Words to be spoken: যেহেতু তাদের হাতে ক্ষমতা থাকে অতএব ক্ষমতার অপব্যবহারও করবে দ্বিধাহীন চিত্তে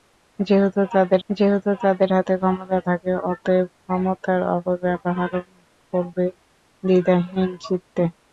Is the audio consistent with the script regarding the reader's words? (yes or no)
no